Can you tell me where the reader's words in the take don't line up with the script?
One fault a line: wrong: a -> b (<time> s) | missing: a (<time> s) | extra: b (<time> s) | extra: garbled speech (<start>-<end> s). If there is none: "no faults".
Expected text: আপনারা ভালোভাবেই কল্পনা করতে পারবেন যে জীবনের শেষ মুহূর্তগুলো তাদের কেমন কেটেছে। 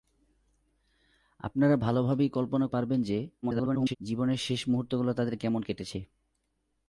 missing: করতে (2.7 s)
extra: garbled speech (3.4-4.0 s)